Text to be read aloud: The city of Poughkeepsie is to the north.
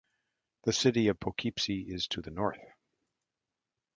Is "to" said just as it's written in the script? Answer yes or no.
yes